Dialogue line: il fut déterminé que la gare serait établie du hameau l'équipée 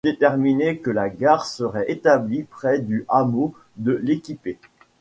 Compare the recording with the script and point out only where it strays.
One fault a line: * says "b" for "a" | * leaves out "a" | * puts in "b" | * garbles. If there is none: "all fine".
* puts in "près"
* puts in "de"